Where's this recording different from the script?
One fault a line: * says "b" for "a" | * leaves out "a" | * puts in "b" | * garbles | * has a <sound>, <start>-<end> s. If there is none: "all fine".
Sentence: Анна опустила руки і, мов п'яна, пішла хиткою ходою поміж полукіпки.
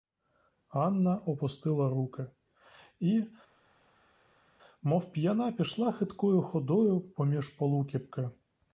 all fine